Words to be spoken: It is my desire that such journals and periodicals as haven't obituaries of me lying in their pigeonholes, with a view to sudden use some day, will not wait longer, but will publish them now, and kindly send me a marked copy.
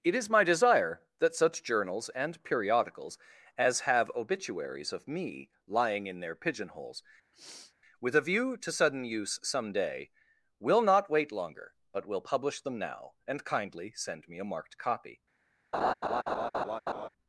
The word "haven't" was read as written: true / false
false